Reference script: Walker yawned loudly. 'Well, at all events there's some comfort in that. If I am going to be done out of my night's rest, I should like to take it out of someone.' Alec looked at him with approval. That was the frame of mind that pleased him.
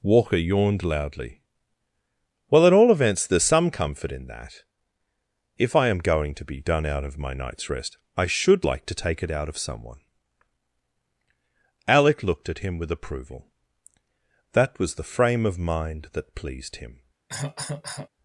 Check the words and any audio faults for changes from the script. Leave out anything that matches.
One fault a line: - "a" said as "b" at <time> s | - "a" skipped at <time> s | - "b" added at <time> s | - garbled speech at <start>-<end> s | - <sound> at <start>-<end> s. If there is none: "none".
- cough at 17.3-18.1 s